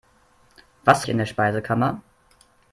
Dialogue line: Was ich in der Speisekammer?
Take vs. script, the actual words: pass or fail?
pass